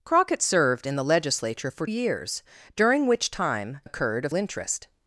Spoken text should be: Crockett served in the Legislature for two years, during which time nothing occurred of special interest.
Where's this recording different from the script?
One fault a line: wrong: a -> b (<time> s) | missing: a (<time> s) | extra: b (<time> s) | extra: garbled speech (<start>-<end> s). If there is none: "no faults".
missing: two (1.9 s)
missing: nothing (3.8 s)
missing: special (4.3 s)